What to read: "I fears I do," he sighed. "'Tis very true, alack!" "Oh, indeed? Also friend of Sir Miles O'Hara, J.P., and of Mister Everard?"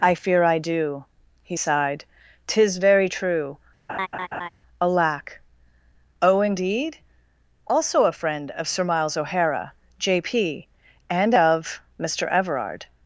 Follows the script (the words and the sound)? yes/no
no